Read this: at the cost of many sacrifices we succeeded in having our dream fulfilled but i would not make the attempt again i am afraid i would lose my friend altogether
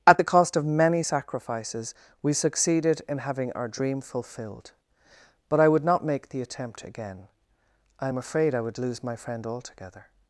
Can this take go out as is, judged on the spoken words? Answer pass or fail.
pass